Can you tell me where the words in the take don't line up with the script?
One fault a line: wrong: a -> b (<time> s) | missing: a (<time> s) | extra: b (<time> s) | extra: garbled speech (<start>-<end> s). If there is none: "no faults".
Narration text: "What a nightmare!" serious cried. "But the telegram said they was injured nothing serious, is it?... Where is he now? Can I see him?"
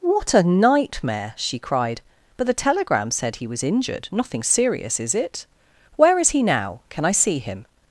wrong: serious -> she (1.4 s)
wrong: they -> he (3.4 s)